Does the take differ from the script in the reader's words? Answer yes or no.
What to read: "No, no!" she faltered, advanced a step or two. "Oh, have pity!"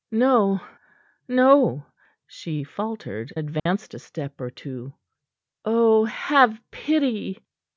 no